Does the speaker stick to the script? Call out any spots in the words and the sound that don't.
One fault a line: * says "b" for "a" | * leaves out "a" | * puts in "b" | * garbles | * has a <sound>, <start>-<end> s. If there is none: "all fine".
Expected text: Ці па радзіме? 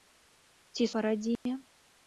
* has a dropout, 1.4-1.5 s